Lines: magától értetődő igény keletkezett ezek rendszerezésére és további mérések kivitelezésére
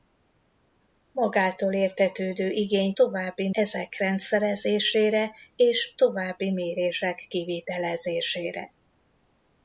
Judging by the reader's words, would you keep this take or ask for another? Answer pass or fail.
fail